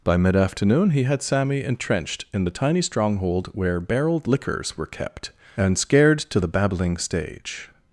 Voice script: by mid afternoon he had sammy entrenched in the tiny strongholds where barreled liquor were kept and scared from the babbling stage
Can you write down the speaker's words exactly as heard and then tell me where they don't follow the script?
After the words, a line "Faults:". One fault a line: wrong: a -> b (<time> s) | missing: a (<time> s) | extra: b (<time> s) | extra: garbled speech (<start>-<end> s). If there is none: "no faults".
by mid afternoon he had sammy entrenched in the tiny stronghold where barreled liquors were kept and scared to the babbling stage
Faults:
wrong: strongholds -> stronghold (2.8 s)
wrong: liquor -> liquors (4.3 s)
wrong: from -> to (6.2 s)